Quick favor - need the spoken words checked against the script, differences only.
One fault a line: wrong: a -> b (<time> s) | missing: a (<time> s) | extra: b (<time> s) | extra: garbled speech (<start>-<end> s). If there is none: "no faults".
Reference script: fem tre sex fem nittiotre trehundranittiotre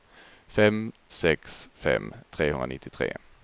missing: tre (0.9 s)
missing: nittiotre (2.1 s)